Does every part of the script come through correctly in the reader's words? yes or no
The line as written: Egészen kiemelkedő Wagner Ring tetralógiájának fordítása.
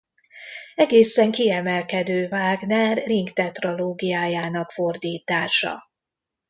yes